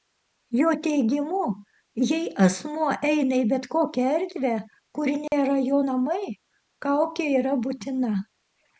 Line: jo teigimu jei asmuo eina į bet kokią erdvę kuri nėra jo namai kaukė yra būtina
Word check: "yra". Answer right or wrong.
right